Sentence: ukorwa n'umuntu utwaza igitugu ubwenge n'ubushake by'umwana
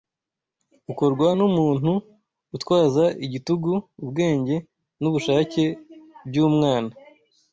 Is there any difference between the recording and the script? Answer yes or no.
no